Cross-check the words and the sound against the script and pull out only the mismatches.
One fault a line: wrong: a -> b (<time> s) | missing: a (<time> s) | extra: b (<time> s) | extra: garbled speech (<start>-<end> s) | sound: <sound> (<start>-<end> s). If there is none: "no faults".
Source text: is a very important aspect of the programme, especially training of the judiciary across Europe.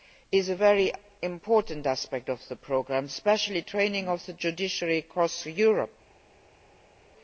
no faults